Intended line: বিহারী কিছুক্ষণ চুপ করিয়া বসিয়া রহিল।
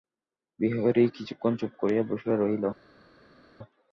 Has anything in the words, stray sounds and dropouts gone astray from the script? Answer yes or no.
no